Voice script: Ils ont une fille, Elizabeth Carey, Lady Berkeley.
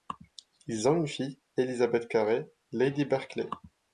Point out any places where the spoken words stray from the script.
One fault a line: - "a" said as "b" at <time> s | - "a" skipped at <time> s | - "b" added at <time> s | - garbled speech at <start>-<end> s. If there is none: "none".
none